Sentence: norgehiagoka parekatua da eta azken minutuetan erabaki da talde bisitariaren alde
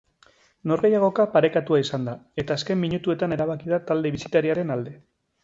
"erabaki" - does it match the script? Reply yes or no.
yes